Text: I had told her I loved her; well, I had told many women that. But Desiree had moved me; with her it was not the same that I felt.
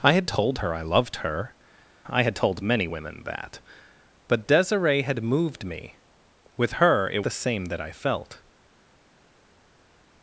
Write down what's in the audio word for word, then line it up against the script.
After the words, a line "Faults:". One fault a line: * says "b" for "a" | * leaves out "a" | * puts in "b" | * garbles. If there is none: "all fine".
I had told her I loved her; I had told many women that. But Desiree had moved me; with her it the same that I felt.
Faults:
* leaves out "well"
* leaves out "was not"